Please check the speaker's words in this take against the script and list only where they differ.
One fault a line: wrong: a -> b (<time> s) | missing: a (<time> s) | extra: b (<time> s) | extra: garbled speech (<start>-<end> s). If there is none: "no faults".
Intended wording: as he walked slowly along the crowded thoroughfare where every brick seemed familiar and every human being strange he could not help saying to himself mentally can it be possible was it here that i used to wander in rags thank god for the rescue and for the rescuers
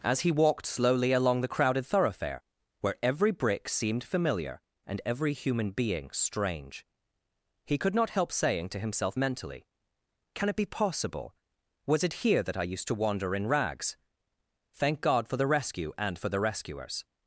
no faults